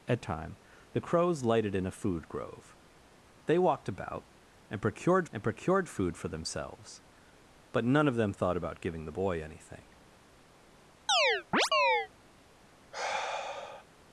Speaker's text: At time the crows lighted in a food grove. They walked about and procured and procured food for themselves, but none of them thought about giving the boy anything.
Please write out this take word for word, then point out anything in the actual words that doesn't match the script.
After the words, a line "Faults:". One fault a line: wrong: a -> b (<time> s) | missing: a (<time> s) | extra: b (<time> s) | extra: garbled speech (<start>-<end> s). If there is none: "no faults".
At time the crows lighted in a food grove. They walked about and procured and procured food for themselves, but none of them thought about giving the boy anything.
Faults:
no faults